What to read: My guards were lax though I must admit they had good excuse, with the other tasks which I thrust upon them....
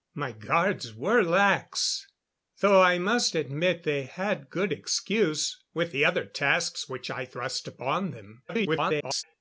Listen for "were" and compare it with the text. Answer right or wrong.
right